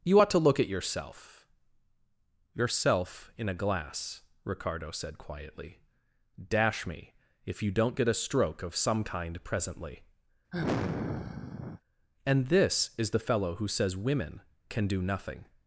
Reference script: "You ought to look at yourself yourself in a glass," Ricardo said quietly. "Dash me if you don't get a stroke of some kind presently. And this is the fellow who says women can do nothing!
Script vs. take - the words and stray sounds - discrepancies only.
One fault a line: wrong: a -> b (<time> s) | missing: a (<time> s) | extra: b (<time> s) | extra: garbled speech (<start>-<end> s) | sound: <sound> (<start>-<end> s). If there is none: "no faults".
sound: sigh (10.5-11.8 s)